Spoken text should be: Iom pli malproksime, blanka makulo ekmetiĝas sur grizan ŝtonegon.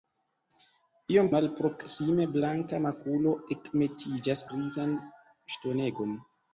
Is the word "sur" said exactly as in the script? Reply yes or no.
no